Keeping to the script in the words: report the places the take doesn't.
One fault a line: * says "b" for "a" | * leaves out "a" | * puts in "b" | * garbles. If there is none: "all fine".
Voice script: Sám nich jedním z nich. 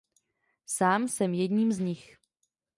* says "jsem" for "nich"